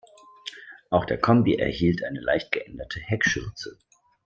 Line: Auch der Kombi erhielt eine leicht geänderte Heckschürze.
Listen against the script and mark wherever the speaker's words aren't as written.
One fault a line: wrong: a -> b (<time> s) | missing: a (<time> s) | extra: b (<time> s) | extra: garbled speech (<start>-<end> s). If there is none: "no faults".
no faults